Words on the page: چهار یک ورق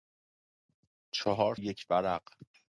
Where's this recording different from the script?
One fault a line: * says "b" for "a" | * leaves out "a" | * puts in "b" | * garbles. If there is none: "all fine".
all fine